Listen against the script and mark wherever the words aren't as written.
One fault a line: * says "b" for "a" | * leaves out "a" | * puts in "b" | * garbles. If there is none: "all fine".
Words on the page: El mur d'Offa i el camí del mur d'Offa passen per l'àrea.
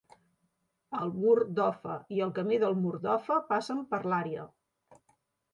all fine